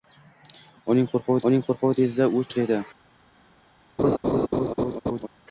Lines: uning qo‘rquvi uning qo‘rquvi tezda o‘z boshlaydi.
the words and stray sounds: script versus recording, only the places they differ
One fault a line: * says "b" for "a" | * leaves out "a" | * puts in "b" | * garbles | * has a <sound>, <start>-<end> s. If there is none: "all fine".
* has a laugh, 4.0-5.3 s